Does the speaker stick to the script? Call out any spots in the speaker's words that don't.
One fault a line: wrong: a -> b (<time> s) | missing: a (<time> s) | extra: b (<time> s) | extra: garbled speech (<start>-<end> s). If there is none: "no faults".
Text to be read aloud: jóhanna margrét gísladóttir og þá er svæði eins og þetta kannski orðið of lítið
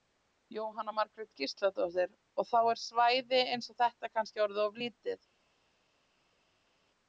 no faults